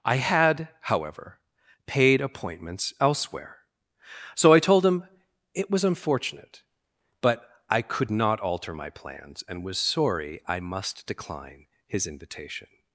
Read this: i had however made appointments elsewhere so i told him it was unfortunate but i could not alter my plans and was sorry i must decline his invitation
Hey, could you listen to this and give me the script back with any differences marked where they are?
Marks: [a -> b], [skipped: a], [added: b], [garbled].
i had however [made -> paid] appointments elsewhere so i told him it was unfortunate but i could not alter my plans and was sorry i must decline his invitation